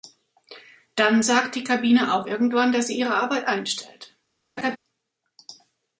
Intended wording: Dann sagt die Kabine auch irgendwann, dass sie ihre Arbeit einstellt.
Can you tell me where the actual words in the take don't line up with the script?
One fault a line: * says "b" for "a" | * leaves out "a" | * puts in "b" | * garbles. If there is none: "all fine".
all fine